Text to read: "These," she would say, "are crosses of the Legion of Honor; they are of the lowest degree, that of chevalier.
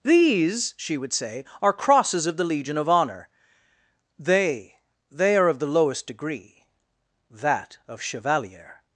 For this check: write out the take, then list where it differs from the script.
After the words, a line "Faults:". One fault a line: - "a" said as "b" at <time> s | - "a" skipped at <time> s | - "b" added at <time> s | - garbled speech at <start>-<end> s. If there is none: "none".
"These," she would say, "are crosses of the Legion of Honor; they they are of the lowest degree, that of chevalier.
Faults:
- "they" added at 5.1 s